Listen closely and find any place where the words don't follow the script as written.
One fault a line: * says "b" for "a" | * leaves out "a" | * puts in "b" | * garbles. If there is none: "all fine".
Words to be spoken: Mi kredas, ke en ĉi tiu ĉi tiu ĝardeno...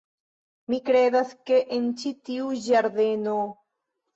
* leaves out "ĉi tiu"